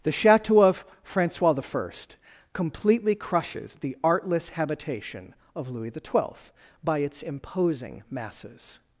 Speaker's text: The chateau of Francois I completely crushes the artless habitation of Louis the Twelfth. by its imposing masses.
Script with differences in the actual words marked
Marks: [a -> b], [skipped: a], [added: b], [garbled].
The chateau of Francois I completely crushes the artless habitation of Louis the Twelfth. by its imposing masses.